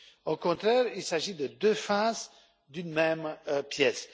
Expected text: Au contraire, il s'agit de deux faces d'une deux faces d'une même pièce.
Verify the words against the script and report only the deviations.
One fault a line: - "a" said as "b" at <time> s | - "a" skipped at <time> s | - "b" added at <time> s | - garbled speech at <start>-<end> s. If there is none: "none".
- "deux faces d'une" skipped at 2.9 s